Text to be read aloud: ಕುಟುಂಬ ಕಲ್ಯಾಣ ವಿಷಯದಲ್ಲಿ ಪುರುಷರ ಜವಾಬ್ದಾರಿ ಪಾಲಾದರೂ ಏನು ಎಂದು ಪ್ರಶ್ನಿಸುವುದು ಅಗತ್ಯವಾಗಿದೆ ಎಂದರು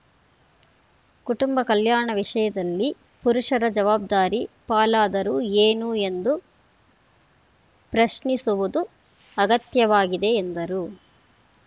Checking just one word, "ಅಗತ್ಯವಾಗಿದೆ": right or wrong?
right